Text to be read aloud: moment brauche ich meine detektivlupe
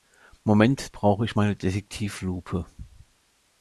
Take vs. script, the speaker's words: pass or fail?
pass